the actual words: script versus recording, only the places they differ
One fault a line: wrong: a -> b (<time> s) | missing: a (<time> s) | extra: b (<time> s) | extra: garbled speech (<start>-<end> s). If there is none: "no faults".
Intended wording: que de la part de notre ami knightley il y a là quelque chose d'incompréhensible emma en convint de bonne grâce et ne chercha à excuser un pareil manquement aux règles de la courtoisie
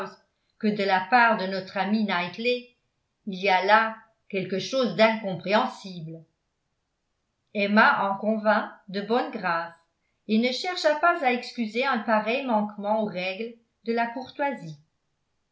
extra: pas (11.0 s)